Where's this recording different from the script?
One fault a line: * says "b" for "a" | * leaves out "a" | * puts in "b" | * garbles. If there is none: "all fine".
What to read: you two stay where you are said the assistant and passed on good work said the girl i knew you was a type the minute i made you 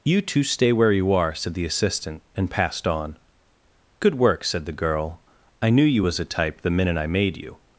all fine